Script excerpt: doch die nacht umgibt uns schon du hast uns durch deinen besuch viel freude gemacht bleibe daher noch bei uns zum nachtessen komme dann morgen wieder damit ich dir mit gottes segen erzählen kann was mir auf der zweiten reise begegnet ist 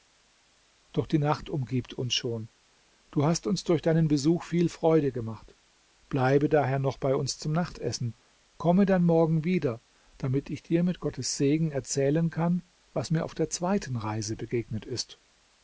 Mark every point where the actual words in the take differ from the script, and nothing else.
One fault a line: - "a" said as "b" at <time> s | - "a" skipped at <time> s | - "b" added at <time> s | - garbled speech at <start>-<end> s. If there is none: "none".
none